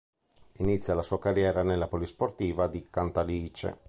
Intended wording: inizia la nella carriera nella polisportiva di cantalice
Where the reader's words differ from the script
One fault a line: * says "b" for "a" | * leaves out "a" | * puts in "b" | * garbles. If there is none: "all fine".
* says "sua" for "nella"